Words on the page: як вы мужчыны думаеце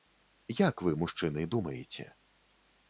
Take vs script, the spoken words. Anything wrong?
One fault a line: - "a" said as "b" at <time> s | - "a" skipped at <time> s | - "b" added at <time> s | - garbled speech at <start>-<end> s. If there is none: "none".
none